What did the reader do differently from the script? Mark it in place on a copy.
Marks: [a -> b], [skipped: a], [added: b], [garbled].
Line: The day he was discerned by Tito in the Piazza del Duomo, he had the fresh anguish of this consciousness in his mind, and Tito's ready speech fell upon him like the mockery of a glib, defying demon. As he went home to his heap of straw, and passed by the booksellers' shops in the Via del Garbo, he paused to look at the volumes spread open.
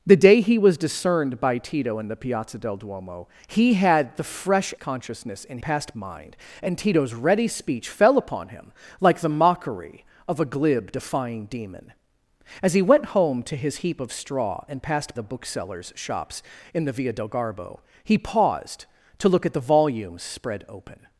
The day he was discerned by Tito in the Piazza del Duomo, he had the fresh [skipped: anguish of this] consciousness in [his -> passed] mind, and Tito's ready speech fell upon him like the mockery of a glib, defying demon. As he went home to his heap of straw, and passed [skipped: by] the booksellers' shops in the Via del Garbo, he paused to look at the volumes spread open.